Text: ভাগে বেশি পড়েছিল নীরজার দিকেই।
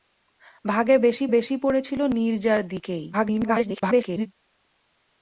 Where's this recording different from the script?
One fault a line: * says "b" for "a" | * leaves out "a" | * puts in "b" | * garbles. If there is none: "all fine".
* puts in "বেশি"
* garbles